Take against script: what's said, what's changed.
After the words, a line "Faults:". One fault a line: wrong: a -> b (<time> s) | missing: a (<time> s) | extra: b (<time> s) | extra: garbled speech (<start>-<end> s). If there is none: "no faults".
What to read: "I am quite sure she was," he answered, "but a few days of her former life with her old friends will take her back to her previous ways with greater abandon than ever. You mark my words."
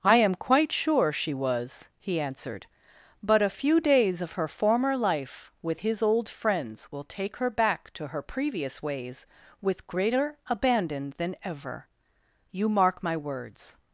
"I am quite sure she was," he answered, "but a few days of her former life with his old friends will take her back to her previous ways with greater abandon than ever. You mark my words."
Faults:
wrong: her -> his (5.8 s)